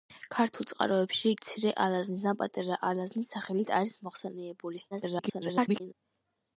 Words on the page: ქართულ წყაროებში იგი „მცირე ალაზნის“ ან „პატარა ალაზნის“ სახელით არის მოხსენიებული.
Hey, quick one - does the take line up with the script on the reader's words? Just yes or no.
no